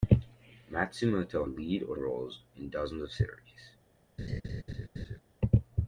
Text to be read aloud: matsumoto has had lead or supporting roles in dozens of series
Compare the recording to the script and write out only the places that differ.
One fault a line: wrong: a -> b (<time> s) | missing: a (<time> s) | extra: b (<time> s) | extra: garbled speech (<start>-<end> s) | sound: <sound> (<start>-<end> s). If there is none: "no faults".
missing: has had (1.5 s)
missing: supporting (2.0 s)
sound: laugh (4.2-5.2 s)